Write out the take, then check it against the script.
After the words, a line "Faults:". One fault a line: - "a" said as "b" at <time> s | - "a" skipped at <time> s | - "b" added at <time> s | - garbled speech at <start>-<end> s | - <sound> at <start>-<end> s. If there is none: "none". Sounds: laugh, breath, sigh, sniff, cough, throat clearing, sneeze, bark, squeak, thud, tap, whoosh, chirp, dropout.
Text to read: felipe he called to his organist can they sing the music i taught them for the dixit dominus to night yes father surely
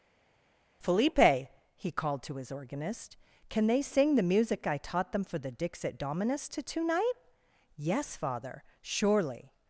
felipe he called to his organist can they sing the music i taught them for the dixit dominus to tonight yes father surely
Faults:
- "night" said as "tonight" at 6.6 s